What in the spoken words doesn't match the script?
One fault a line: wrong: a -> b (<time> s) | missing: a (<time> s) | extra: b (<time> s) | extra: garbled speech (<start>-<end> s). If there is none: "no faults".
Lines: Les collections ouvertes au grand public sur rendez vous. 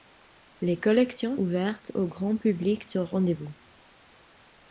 no faults